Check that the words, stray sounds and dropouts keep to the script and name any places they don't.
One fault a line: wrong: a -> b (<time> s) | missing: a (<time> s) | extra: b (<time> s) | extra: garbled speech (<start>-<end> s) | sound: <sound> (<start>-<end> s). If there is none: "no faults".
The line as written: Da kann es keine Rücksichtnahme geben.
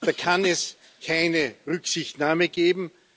no faults